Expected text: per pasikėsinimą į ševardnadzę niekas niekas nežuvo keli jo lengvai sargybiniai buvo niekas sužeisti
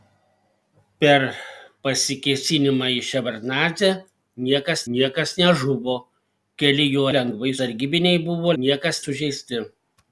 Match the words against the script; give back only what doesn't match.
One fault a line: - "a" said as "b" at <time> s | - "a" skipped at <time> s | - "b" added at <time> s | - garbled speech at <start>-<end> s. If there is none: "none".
none